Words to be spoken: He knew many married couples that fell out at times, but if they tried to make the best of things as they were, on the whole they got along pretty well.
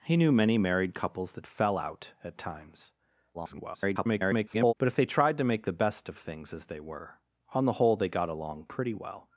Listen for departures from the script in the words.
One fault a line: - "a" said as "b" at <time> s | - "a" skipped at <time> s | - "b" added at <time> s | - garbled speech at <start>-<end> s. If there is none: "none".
- garbled speech at 3.3-4.7 s